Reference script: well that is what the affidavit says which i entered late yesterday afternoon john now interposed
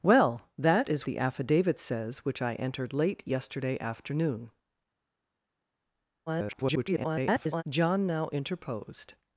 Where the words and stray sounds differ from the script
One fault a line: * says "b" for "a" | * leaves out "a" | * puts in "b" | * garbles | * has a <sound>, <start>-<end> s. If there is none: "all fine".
* leaves out "what"
* garbles